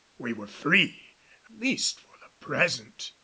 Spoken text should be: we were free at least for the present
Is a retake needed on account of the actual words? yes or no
yes